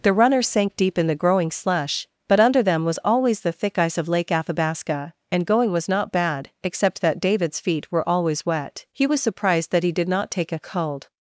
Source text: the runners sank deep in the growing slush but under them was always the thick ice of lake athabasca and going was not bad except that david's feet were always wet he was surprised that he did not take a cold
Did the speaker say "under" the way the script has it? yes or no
yes